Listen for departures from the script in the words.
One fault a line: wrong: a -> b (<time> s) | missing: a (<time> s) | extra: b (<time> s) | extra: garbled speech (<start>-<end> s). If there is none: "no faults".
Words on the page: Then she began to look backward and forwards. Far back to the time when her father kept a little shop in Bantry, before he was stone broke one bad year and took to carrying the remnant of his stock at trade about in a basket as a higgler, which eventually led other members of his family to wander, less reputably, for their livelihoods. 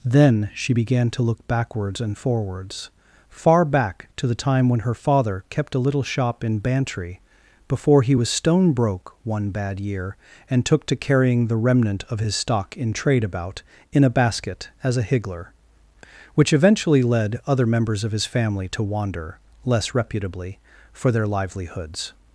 wrong: backward -> backwards (1.5 s)
wrong: at -> in (12.8 s)